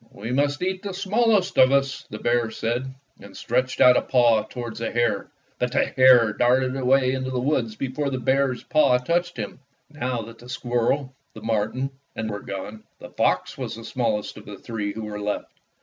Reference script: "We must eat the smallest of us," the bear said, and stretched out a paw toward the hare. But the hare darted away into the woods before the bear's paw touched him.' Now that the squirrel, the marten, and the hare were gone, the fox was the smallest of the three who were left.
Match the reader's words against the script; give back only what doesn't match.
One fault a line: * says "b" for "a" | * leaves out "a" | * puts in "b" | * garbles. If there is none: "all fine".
* leaves out "the hare"